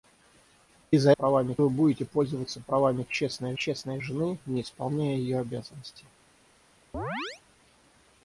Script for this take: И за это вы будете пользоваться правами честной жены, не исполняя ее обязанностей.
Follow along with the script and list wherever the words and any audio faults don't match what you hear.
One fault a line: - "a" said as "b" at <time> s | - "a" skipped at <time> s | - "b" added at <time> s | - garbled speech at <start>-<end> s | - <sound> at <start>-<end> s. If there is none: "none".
- "это" said as "правами" at 1.1 s
- "честной" added at 3.5 s
- chirp at 6.9-7.4 s